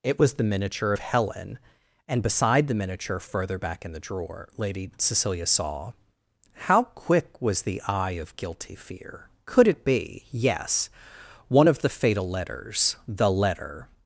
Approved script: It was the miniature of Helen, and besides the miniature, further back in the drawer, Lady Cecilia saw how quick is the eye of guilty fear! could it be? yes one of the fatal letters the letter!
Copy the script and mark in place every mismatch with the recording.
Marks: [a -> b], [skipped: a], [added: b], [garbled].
It was the miniature of Helen, and [besides -> beside] the miniature, further back in the drawer, Lady Cecilia saw how quick [is -> was] the eye of guilty fear! could it be? yes one of the fatal letters the letter!